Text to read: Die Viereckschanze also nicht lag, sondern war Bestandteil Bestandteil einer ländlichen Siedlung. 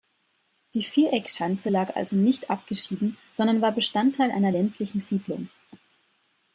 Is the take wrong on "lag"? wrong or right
wrong